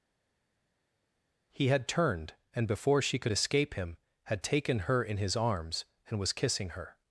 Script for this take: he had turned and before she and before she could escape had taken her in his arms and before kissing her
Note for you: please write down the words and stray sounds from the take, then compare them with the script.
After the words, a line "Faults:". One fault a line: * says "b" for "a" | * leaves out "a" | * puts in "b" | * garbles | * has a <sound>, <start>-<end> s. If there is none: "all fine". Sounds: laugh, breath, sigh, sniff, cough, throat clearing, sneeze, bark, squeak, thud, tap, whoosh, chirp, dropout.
he had turned and before she could escape him had taken her in his arms and was kissing her
Faults:
* leaves out "and before she"
* puts in "him"
* says "was" for "before"